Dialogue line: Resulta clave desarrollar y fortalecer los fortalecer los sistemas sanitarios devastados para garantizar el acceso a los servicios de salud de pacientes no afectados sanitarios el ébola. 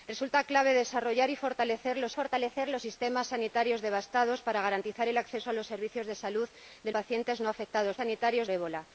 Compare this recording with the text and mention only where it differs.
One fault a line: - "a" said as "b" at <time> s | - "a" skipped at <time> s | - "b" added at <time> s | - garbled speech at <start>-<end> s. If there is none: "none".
none